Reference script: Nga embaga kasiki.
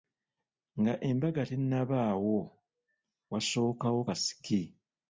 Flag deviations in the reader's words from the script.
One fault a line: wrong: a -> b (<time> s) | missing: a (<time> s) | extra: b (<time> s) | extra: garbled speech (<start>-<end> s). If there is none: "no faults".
extra: tennabaawo wasookawo (1.5 s)